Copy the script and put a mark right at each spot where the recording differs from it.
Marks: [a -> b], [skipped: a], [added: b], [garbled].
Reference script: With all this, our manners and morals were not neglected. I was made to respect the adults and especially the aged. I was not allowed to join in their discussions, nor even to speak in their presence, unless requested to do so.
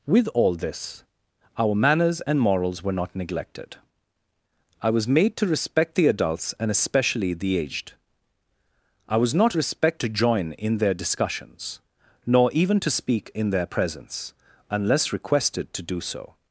With all this, our manners and morals were not neglected. I was made to respect the adults and especially the aged. I was not [allowed -> respect] to join in their discussions, nor even to speak in their presence, unless requested to do so.